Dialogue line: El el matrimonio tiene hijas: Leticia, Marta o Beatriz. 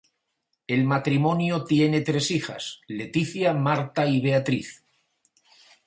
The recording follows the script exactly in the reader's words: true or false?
false